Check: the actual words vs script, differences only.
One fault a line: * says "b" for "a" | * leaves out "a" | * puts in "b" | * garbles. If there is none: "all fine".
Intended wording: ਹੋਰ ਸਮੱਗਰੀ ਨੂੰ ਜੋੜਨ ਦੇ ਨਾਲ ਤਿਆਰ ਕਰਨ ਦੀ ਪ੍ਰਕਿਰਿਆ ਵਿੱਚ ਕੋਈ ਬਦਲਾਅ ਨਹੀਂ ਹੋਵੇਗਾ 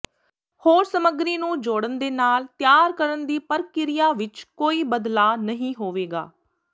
all fine